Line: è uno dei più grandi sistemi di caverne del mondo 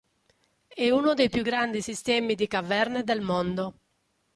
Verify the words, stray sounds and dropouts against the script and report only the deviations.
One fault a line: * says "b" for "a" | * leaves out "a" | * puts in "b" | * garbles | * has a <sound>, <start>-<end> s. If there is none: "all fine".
all fine